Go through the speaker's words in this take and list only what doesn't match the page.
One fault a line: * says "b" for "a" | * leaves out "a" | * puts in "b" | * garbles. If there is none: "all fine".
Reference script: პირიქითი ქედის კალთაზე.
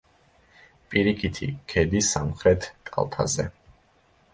* puts in "სამხრეთ"